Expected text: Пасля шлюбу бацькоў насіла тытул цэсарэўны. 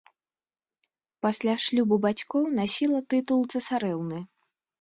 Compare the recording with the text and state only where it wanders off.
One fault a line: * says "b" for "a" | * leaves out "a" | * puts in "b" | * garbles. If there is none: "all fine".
all fine